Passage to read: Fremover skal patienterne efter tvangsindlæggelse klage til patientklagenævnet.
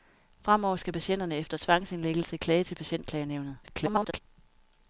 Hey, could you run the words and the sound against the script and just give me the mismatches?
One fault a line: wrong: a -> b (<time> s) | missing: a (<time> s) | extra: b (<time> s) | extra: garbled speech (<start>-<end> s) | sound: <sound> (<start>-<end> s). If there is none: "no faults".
extra: garbled speech (3.6-4.2 s)